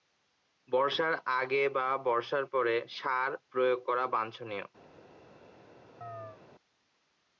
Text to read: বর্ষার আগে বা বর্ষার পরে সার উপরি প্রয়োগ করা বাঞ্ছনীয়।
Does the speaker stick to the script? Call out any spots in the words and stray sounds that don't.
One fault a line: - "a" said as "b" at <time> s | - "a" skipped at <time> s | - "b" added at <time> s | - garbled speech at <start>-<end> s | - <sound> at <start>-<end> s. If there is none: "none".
- "উপরি" skipped at 3.3 s
- chirp at 6.0-6.4 s